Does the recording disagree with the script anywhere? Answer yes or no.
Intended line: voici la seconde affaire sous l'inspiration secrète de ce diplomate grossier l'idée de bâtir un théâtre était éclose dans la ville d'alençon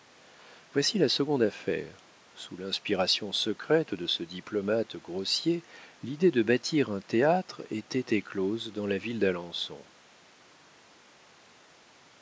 no